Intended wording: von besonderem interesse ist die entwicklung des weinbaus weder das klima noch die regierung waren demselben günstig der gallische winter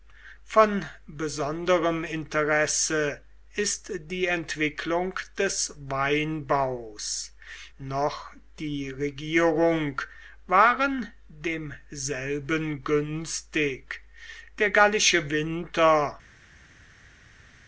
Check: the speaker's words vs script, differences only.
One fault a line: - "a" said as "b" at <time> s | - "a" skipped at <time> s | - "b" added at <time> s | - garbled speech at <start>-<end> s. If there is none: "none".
- "weder das klima" skipped at 7.3 s